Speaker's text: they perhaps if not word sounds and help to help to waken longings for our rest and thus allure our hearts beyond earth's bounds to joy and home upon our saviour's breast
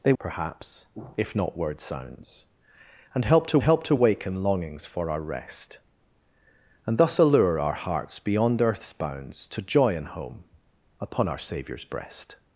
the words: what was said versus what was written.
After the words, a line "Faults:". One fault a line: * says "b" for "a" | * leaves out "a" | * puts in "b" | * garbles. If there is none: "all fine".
they perhaps if not word sounds and help to help to waken longings for our rest and thus allure our hearts beyond earth's bounds to joy and home upon our saviour's breast
Faults:
all fine